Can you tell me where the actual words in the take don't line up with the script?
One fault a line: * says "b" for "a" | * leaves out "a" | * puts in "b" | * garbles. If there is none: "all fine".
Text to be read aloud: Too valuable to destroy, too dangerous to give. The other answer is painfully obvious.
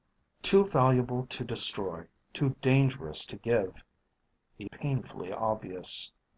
* leaves out "other answer is"